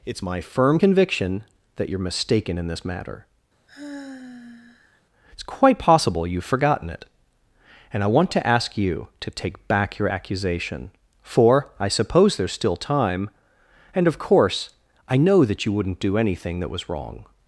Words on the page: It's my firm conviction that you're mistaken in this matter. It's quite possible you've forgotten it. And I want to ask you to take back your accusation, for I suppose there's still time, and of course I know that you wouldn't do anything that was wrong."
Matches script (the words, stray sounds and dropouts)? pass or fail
fail